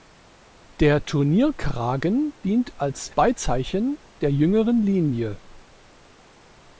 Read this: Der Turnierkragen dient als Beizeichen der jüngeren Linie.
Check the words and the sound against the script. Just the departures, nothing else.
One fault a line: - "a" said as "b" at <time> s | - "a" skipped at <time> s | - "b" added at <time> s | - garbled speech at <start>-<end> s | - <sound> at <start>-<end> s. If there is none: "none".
none